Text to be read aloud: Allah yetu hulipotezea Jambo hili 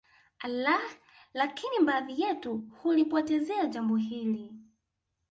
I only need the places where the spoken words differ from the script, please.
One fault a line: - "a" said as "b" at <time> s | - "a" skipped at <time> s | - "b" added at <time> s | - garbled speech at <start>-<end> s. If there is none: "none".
- "lakini baadhi" added at 1.3 s